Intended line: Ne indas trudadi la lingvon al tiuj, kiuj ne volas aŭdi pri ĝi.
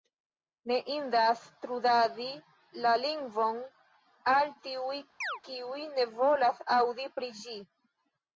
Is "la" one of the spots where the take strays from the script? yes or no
no